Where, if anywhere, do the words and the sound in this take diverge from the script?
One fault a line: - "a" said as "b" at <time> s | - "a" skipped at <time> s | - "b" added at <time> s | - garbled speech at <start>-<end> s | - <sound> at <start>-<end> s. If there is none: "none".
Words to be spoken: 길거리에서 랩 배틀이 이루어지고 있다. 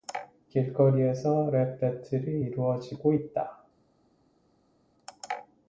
none